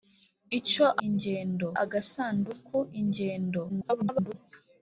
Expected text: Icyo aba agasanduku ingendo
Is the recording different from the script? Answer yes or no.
yes